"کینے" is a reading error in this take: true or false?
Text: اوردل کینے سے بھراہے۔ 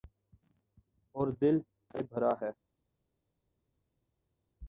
true